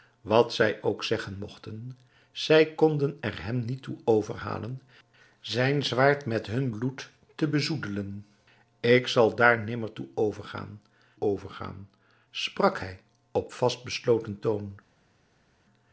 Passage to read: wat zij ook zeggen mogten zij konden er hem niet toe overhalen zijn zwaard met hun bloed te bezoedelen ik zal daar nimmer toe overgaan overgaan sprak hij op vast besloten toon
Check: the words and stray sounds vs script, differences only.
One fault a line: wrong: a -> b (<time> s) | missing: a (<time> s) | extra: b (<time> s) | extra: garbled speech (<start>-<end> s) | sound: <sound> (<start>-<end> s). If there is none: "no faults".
no faults